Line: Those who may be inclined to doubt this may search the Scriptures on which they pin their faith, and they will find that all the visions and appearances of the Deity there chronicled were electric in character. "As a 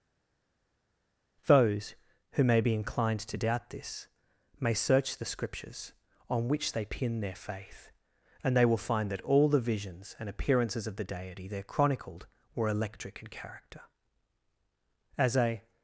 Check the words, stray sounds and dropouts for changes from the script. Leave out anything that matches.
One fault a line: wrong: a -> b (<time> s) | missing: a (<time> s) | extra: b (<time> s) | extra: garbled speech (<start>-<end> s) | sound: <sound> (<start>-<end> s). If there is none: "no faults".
no faults